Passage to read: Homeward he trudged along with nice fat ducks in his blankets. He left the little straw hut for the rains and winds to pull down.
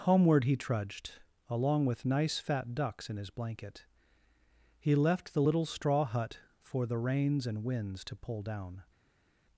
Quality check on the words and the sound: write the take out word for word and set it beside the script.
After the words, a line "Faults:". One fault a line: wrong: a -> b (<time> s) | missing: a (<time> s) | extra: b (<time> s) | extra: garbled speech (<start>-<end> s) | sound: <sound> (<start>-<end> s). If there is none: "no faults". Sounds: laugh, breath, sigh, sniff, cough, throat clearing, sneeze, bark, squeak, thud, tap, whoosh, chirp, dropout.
Homeward he trudged along with nice fat ducks in his blanket. He left the little straw hut for the rains and winds to pull down.
Faults:
wrong: blankets -> blanket (3.3 s)